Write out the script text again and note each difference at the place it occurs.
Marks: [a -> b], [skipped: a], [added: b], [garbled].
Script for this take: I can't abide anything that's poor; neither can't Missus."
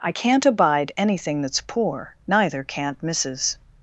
I can't abide anything that's poor; neither can't Missus."